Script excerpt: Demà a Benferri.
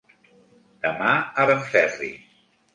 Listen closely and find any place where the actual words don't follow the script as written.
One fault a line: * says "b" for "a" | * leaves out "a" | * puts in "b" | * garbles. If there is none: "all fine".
all fine